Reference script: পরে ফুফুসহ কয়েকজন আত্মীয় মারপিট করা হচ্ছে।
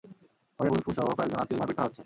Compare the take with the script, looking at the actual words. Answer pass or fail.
pass